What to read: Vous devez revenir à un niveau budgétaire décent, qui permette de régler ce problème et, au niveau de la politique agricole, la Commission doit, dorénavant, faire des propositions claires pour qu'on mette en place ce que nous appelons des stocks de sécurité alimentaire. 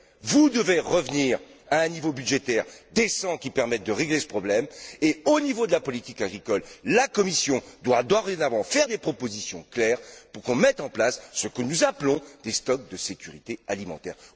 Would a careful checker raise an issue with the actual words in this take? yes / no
no